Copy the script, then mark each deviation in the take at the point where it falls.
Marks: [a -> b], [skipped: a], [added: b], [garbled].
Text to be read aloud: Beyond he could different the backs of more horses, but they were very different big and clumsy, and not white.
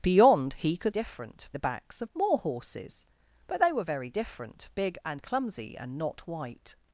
Beyond he could different the backs of more horses, but they were very different big and clumsy, and not white.